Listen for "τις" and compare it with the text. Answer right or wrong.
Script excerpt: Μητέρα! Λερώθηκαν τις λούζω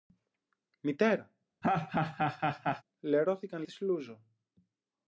right